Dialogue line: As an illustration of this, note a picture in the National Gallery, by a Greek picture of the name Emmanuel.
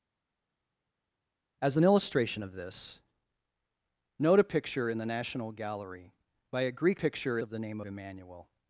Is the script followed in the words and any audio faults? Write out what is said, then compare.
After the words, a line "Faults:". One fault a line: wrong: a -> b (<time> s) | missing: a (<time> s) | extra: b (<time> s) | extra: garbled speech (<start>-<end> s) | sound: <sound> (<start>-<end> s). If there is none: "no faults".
As an illustration of this, note a picture in the National Gallery, by a Greek picture of the name Emmanuel.
Faults:
no faults